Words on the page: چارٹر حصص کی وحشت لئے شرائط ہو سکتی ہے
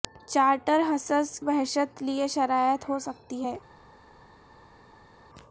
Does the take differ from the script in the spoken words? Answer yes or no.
yes